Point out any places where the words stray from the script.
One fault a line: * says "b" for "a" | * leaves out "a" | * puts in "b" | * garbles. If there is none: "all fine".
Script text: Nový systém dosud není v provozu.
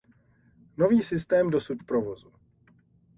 * leaves out "není"